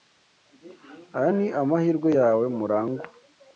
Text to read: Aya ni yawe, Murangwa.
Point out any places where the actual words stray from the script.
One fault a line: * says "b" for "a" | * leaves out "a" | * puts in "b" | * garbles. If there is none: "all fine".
* puts in "amahirwe"